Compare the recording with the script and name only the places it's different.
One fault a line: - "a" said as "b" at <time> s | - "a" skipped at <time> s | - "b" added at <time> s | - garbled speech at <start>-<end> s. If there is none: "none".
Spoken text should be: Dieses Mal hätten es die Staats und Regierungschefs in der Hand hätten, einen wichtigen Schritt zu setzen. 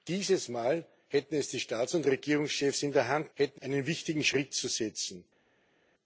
none